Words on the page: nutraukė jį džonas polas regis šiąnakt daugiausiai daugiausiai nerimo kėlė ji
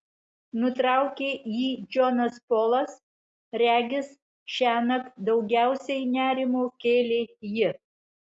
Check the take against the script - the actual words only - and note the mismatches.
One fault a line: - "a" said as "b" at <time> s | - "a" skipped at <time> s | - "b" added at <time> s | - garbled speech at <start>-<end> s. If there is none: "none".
- "daugiausiai" skipped at 6.1 s